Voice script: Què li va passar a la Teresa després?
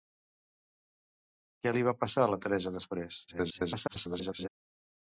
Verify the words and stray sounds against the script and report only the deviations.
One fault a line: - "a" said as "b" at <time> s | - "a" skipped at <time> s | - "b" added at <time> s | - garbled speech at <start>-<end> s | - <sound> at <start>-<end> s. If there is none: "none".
- garbled speech at 3.3-4.5 s